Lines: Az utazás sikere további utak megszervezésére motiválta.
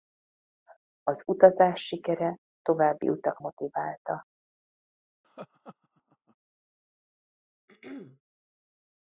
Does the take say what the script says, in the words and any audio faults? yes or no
no